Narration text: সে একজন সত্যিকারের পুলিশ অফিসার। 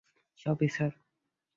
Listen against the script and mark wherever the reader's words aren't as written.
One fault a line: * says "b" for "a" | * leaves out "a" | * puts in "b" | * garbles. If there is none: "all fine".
* leaves out "একজন সত্যিকারের পুলিশ"